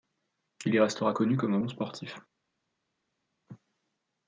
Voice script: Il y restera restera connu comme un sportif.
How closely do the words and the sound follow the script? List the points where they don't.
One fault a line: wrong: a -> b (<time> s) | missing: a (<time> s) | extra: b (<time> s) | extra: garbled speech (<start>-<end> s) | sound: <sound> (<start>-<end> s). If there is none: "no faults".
missing: restera (1.1 s)
extra: bon (1.5 s)